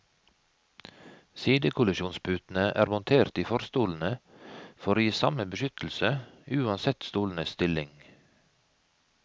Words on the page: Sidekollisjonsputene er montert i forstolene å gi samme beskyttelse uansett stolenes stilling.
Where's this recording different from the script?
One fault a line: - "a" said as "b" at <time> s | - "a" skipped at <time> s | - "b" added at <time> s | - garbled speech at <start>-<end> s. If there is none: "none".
- "for" added at 4.8 s